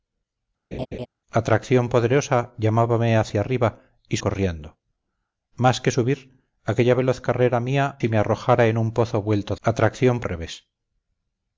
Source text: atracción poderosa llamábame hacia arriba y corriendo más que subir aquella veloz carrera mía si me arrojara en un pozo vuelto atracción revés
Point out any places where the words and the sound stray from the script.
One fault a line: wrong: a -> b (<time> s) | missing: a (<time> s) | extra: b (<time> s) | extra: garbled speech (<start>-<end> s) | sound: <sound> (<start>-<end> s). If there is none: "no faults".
sound: laugh (0.7-1.1 s)